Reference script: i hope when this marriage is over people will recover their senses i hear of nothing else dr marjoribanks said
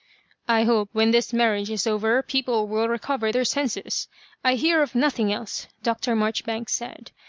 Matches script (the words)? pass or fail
pass